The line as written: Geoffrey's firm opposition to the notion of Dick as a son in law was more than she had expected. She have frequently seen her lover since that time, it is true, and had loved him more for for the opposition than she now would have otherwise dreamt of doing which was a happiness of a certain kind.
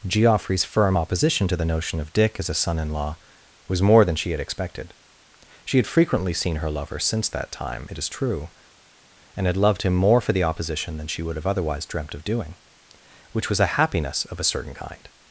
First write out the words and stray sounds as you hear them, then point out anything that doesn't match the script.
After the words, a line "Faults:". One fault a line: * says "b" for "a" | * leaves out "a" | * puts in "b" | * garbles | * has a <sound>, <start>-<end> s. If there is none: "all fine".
Geoffrey's firm opposition to the notion of Dick as a son in law was more than she had expected. She had frequently seen her lover since that time, it is true, and had loved him more for the opposition than she would have otherwise dreamt of doing which was a happiness of a certain kind.
Faults:
* says "had" for "have"
* leaves out "for"
* leaves out "now"